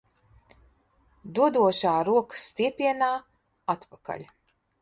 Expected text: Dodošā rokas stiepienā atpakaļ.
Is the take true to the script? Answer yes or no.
yes